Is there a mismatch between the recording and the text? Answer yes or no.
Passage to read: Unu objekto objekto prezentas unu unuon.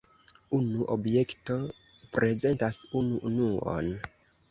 yes